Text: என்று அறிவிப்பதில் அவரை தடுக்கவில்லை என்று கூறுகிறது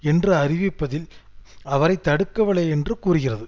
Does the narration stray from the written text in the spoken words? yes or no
no